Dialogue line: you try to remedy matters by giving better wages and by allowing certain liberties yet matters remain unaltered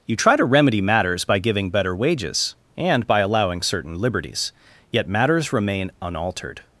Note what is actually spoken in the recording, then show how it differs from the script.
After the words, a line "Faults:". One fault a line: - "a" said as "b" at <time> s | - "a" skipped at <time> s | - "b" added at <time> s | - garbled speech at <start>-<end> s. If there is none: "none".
you try to remedy matters by giving better wages and by allowing certain liberties yet matters remain unaltered
Faults:
none